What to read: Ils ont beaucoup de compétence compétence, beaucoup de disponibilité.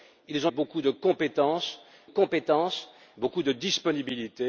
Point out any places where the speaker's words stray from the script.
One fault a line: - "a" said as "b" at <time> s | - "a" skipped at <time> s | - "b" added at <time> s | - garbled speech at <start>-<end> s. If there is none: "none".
none